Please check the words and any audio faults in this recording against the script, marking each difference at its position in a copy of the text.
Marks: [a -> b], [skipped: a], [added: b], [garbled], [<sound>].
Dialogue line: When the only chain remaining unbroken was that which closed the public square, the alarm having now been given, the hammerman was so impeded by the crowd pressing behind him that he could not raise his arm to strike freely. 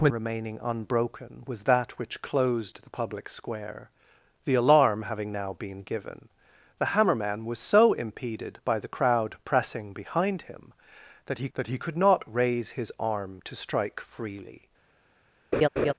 When [skipped: the only chain] remaining unbroken was that which closed the public square, the alarm having now been given, the hammerman was so impeded by the crowd pressing behind him that he [added: that he] could not raise his arm to strike freely. [laugh]